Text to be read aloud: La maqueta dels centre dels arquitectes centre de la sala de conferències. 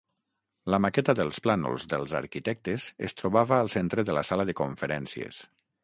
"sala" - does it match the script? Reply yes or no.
yes